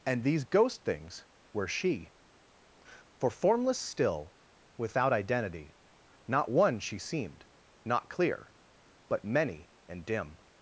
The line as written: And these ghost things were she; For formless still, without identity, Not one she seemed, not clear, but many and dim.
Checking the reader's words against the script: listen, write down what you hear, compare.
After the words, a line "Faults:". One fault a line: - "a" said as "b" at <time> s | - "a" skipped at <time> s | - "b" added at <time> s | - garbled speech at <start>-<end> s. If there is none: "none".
And these ghost things were she; For formless still, without identity, Not one she seemed, not clear, but many and dim.
Faults:
none